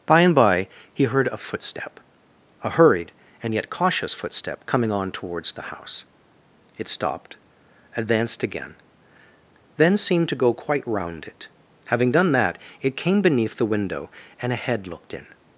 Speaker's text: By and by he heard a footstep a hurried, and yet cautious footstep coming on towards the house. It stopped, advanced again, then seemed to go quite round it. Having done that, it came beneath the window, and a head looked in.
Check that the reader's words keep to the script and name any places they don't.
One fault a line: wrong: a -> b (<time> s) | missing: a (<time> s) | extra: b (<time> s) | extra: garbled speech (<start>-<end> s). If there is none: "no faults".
no faults